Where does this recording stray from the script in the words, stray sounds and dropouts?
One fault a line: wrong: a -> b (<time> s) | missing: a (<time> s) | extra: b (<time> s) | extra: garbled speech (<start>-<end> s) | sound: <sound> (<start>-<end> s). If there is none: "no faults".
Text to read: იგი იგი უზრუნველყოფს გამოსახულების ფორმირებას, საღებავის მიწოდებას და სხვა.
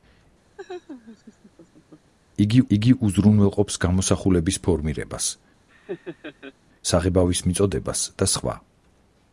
sound: laugh (0.6-2.1 s)
sound: laugh (5.7-6.5 s)